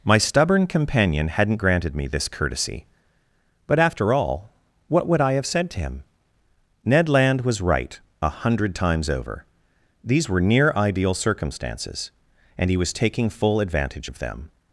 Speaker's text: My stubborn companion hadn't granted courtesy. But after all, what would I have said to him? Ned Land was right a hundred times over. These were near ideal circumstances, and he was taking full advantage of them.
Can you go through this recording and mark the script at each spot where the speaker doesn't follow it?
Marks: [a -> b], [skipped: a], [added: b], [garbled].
My stubborn companion hadn't granted [added: me this] courtesy. But after all, what would I have said to him? Ned Land was right a hundred times over. These were near ideal circumstances, and he was taking full advantage of them.